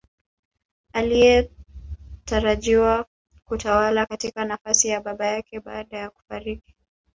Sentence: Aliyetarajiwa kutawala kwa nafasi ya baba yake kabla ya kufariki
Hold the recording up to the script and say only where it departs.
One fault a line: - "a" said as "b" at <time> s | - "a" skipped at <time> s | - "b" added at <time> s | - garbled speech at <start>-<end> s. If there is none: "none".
- "kwa" said as "katika" at 4.0 s
- "kabla" said as "baada" at 5.6 s